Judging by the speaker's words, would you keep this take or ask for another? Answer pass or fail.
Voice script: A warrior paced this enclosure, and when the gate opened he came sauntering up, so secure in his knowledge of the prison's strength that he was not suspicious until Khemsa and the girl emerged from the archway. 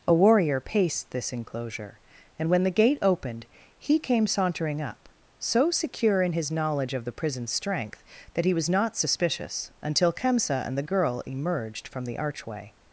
pass